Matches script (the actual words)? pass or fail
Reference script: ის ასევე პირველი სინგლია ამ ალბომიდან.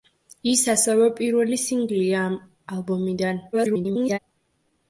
fail